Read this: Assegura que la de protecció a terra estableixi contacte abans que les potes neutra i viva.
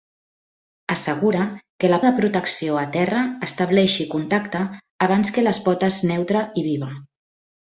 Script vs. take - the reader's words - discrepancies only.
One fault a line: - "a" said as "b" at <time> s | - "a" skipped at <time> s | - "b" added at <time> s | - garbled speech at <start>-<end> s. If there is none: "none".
none